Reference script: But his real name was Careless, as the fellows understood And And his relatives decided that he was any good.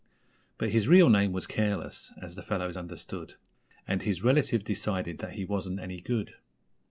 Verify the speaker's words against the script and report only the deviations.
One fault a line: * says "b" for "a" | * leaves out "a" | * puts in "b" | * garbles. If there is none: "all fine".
* leaves out "And"
* says "wasn't" for "was"